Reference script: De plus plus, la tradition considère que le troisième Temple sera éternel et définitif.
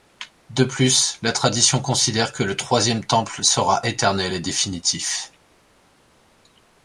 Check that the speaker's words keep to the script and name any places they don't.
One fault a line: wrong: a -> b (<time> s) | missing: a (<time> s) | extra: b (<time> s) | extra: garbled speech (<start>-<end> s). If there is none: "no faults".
missing: plus (1.2 s)